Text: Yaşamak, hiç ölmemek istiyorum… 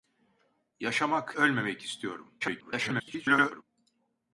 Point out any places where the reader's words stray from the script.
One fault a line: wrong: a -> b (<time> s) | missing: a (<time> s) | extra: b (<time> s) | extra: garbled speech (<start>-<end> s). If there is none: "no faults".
missing: hiç (1.4 s)
extra: garbled speech (2.4-3.6 s)